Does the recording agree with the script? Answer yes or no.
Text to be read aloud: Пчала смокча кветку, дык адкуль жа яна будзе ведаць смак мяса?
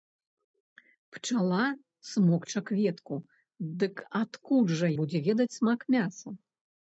no